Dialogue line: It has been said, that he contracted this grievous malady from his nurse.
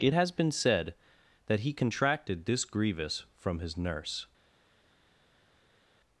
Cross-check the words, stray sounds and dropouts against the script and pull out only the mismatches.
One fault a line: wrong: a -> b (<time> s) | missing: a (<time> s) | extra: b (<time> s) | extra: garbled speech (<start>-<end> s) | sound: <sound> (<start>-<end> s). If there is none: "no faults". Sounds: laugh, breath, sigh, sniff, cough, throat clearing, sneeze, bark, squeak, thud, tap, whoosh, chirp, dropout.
missing: malady (3.2 s)